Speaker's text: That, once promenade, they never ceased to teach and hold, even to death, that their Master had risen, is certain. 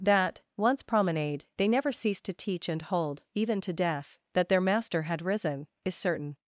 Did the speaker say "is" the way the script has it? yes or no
yes